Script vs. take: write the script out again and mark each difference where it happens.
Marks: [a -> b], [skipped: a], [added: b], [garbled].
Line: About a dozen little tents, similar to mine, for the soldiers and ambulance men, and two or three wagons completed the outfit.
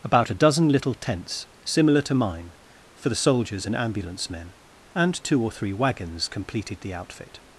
About a dozen little tents, similar to mine, for the soldiers and ambulance men, and two or three wagons completed the outfit.